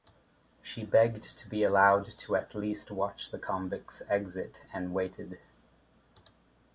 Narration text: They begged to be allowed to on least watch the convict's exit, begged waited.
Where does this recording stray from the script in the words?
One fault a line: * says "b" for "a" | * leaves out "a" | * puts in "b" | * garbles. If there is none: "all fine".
* says "She" for "They"
* says "at" for "on"
* says "and" for "begged"